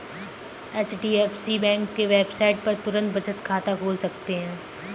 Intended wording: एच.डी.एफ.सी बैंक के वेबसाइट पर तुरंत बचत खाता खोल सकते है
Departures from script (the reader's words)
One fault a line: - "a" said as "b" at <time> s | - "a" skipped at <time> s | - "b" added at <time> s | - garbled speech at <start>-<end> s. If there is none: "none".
none